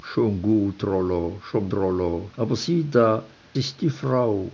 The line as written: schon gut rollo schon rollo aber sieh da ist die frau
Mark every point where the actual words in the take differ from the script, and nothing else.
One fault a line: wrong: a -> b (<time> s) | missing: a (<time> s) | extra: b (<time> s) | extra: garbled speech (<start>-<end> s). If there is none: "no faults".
no faults